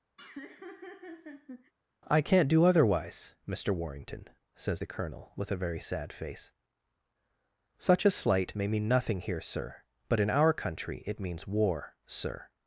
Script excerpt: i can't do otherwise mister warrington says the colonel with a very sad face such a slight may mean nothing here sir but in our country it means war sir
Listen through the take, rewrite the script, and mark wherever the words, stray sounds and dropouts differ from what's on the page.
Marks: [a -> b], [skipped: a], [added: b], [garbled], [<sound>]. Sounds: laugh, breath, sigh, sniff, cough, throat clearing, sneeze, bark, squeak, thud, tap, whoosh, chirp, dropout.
[laugh] i can't do otherwise mister warrington says the colonel with a very sad face such a slight may mean nothing here sir but in our country it means war sir